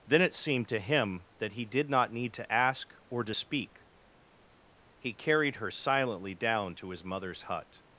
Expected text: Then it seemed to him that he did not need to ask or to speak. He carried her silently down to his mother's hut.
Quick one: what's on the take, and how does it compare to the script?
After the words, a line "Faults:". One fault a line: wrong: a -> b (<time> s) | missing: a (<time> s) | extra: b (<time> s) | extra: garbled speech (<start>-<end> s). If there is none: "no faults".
Then it seemed to him that he did not need to ask or to speak. He carried her silently down to his mother's hut.
Faults:
no faults